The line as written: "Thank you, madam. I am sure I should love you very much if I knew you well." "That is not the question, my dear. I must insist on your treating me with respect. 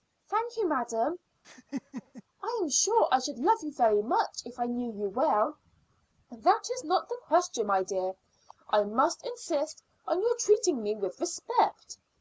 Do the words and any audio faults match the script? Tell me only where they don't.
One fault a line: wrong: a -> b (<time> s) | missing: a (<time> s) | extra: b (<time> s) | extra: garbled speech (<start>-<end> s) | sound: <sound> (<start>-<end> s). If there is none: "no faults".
sound: laugh (1.4-2.2 s)